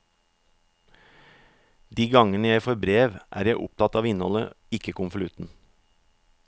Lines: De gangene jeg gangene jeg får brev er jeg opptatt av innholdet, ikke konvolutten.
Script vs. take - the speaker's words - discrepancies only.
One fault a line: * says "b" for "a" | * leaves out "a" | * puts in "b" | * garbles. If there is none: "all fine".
* leaves out "gangene jeg"